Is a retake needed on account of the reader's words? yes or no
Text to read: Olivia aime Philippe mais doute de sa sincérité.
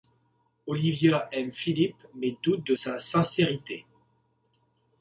no